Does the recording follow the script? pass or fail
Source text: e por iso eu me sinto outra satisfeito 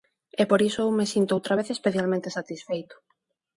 fail